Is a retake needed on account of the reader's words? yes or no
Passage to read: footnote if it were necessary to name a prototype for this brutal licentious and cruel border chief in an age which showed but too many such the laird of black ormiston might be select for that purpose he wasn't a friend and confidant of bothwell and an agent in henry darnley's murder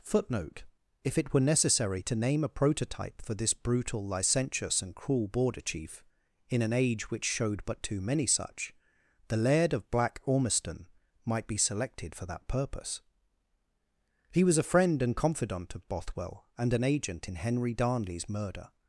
yes